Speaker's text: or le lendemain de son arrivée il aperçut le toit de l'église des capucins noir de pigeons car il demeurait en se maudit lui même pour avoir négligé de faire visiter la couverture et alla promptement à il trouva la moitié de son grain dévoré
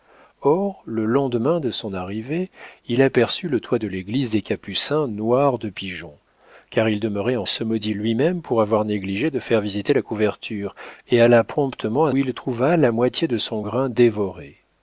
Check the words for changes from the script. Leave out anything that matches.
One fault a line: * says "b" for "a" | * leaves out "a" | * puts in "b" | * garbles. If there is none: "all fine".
all fine